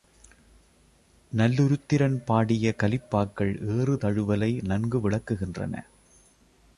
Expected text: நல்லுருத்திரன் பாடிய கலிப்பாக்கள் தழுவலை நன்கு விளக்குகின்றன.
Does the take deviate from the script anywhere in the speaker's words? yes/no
yes